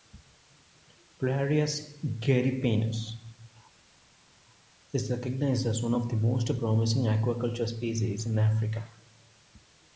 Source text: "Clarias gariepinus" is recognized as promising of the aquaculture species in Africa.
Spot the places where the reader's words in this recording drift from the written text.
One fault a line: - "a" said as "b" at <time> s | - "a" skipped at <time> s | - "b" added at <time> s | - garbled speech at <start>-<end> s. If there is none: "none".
- "promising" said as "one" at 5.8 s
- "most promising" added at 6.2 s